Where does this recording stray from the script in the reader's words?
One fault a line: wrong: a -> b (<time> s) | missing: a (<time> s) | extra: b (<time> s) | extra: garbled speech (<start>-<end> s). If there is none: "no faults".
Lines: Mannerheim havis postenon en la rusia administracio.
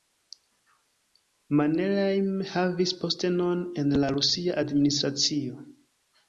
no faults